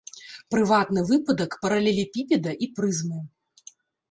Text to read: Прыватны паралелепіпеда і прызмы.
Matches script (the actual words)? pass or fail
fail